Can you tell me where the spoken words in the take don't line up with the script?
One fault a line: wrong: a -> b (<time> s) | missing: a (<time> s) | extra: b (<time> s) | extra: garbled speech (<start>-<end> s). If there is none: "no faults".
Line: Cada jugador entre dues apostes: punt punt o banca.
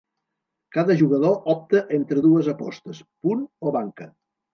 extra: opta (1.5 s)
missing: punt (3.5 s)